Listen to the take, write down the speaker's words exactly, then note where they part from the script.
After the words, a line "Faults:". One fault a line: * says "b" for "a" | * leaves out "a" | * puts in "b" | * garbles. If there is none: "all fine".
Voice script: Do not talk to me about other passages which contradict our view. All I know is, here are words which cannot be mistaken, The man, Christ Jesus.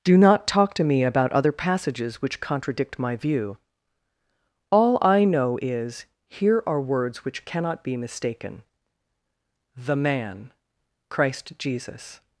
Do not talk to me about other passages which contradict my view. All I know is, here are words which cannot be mistaken, The man, Christ Jesus.
Faults:
* says "my" for "our"